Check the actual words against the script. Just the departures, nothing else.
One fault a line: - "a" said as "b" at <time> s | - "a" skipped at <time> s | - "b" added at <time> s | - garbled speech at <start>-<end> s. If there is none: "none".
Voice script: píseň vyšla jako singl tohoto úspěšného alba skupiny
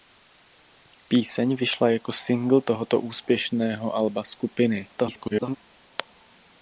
- garbled speech at 5.0-5.6 s